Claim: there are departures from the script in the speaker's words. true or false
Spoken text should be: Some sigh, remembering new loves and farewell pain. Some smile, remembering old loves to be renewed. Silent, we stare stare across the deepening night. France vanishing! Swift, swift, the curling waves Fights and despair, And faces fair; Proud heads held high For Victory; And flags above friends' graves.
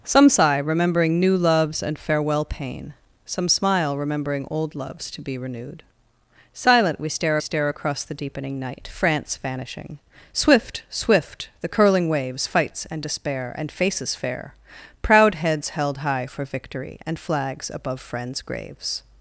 false